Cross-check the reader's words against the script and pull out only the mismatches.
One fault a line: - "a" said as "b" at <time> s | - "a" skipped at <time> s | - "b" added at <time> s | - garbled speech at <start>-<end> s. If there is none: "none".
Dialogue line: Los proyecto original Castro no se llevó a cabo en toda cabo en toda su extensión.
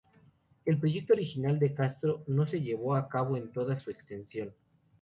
- "Los" said as "El" at 0.7 s
- "de" added at 1.6 s
- "cabo en toda" skipped at 3.8 s